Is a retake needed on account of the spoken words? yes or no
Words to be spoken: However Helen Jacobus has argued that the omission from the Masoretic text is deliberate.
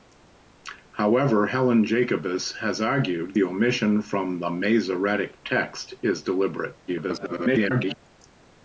yes